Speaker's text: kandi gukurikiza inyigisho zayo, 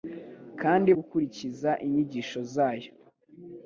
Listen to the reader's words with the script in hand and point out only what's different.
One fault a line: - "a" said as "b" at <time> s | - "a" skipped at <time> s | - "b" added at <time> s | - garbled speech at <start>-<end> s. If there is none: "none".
none